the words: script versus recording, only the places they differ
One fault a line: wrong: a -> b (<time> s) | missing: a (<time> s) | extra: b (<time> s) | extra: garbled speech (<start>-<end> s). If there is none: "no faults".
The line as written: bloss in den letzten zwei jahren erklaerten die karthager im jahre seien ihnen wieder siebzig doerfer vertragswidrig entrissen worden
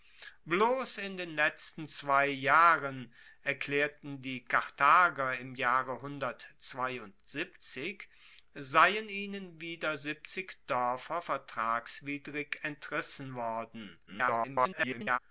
extra: garbled speech (14.1-15.2 s)